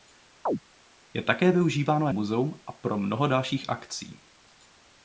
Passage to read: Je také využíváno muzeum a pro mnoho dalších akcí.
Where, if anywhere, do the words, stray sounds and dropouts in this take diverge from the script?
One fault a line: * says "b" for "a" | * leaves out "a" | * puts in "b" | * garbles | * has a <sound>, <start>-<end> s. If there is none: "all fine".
* has a chirp, 0.5-0.6 s